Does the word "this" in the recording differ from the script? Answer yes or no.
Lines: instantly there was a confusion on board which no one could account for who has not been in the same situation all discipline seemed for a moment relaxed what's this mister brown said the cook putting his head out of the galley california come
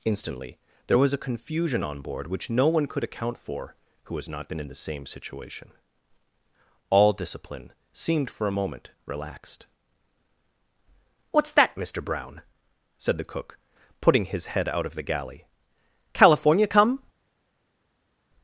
yes